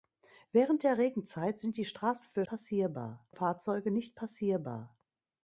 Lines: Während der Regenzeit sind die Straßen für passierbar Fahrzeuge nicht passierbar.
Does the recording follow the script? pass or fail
pass